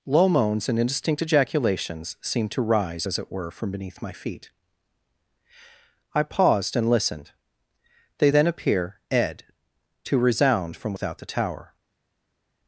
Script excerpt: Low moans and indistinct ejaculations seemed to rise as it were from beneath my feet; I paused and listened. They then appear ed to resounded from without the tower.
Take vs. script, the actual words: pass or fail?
fail